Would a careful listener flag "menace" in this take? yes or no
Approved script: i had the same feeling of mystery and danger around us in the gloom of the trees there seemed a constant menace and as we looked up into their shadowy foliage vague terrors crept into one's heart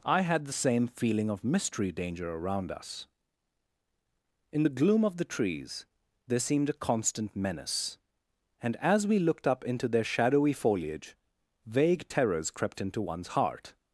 no